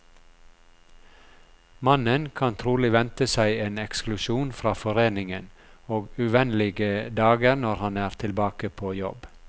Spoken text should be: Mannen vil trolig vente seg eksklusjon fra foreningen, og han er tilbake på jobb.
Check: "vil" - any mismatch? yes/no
yes